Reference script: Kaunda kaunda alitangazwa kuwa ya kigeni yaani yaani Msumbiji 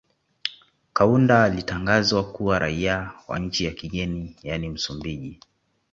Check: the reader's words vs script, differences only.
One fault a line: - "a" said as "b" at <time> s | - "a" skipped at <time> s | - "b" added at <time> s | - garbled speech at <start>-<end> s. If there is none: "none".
- "kaunda" skipped at 1.4 s
- "raia wa nchi" added at 2.6 s
- "yaani" skipped at 4.7 s